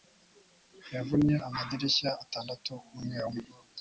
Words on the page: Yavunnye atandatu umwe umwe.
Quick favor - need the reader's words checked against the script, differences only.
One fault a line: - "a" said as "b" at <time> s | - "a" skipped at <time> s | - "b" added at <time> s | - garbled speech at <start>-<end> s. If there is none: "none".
- "amadirishya" added at 1.5 s